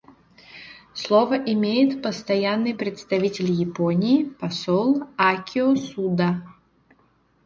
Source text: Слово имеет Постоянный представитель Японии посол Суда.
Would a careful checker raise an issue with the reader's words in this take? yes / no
yes